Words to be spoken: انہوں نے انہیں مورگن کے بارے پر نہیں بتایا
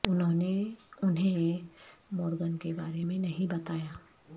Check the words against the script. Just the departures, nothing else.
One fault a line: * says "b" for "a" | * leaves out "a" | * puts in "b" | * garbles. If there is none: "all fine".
* says "میں" for "پر"